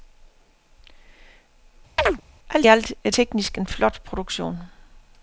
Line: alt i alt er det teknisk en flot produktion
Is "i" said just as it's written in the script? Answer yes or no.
no